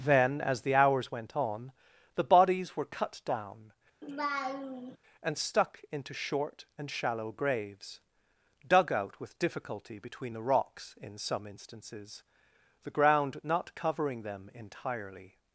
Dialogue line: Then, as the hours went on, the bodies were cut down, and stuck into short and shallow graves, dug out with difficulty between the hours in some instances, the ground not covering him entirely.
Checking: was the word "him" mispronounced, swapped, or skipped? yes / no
yes